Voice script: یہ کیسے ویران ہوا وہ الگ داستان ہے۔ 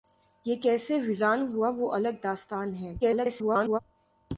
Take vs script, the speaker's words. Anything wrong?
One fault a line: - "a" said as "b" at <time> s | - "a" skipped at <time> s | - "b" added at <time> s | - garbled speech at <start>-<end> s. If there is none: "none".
- garbled speech at 3.0-3.8 s